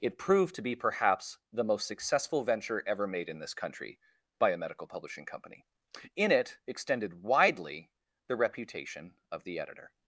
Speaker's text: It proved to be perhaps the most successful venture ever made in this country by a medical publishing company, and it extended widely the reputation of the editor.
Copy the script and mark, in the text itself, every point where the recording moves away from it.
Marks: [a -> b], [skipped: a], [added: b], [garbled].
It proved to be perhaps the most successful venture ever made in this country by a medical publishing company, [and -> in] it extended widely the reputation of the editor.